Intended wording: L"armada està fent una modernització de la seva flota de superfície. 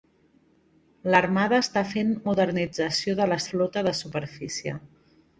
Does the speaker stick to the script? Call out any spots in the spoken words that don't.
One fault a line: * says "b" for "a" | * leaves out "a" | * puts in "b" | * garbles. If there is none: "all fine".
* leaves out "una"
* leaves out "seva"